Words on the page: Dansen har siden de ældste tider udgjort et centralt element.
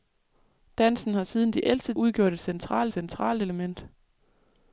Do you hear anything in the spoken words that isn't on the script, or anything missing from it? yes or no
yes